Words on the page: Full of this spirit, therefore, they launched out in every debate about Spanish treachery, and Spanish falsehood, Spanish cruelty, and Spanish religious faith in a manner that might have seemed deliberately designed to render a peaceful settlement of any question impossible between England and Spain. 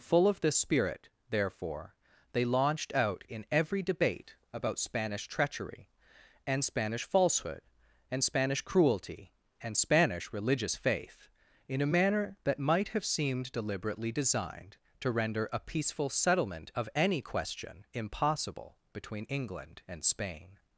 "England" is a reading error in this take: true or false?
false